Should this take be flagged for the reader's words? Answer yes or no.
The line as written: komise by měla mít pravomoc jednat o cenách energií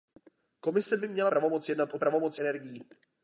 yes